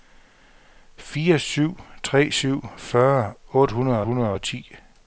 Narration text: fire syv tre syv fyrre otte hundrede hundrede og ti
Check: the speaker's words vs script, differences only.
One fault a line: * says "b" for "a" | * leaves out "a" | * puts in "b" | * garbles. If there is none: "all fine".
all fine